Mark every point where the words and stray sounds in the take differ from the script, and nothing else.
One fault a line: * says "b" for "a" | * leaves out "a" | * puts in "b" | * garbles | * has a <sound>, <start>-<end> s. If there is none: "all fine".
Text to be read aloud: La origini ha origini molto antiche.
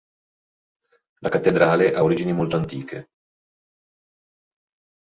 * says "cattedrale" for "origini"